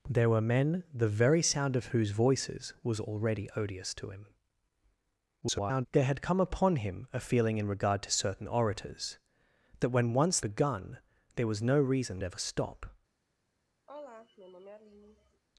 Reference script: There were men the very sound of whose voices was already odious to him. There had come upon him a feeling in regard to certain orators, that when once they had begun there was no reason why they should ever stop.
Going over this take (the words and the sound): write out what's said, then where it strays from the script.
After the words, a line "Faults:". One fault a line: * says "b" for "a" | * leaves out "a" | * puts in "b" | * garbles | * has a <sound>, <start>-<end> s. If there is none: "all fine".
There were men the very sound of whose voices was already odious to him. [garbled] There had come upon him a feeling in regard to certain orators, that when once begun there was no reason ever stop.
Faults:
* garbles
* leaves out "they had"
* leaves out "why they should"
* has a sigh, 13.9-15.4 s